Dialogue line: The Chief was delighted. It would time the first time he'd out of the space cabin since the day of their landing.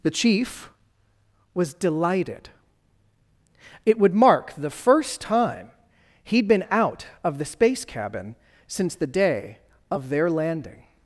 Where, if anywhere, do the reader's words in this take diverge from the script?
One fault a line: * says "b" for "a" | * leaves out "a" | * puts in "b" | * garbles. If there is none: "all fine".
* says "mark" for "time"
* puts in "been"